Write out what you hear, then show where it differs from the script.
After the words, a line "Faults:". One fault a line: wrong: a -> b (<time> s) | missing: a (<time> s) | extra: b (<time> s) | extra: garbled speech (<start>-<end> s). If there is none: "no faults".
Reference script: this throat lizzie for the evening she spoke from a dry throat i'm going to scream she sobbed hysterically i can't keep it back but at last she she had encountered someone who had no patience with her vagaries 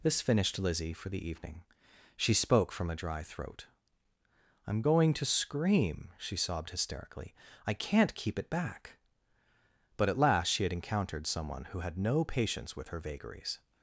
this finished lizzie for the evening she spoke from a dry throat i'm going to scream she sobbed hysterically i can't keep it back but at last she had encountered someone who had no patience with her vagaries
Faults:
wrong: throat -> finished (0.2 s)
missing: she (10.6 s)